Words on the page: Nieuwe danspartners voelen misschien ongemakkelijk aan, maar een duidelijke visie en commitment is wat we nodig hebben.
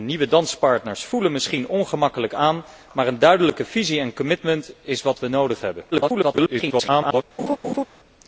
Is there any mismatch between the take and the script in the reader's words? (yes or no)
yes